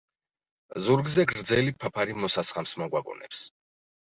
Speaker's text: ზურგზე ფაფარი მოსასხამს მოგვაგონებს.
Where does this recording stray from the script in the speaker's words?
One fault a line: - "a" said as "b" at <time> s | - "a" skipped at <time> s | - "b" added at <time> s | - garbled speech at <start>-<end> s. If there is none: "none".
- "გრძელი" added at 1.3 s